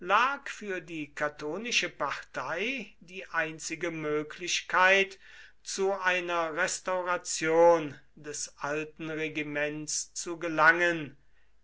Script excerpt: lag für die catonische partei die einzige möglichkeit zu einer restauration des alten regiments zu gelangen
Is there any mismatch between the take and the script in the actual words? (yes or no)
no